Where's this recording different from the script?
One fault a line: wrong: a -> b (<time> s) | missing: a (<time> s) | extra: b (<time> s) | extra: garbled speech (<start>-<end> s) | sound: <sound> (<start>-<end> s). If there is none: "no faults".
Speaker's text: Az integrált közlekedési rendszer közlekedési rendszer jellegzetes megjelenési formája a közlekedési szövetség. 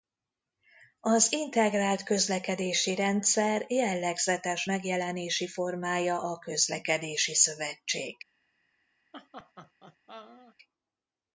missing: közlekedési rendszer (3.6 s)
sound: laugh (9.1-10.6 s)